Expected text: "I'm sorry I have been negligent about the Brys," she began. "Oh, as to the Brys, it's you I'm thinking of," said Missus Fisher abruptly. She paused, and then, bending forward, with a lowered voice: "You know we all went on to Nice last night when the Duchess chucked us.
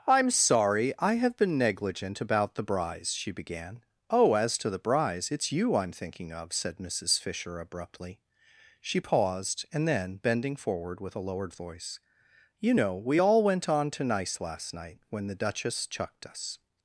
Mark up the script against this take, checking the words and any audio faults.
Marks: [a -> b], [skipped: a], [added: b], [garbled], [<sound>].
"I'm sorry I have been negligent about the Brys," she began. "Oh, as to the Brys, it's you I'm thinking of," said Missus Fisher abruptly. She paused, and then, bending forward, with a lowered voice: "You know we all went on to Nice last night when the Duchess chucked us.